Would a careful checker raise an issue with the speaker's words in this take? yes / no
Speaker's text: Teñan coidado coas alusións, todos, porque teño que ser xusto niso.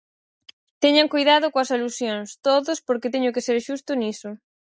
no